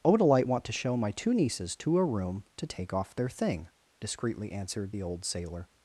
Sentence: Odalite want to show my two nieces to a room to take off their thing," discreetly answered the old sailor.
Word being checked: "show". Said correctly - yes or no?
yes